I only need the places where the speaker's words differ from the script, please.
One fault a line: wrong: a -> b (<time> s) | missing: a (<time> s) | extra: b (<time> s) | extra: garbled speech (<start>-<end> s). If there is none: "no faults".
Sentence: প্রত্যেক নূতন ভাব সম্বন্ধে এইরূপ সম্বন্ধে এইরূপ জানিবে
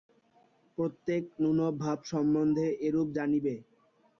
missing: সম্বন্ধে এইরূপ (3.1 s)